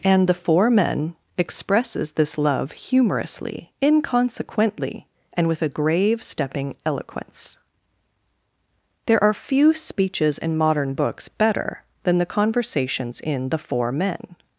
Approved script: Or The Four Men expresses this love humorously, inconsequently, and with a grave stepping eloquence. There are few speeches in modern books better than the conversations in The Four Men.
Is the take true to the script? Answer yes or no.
no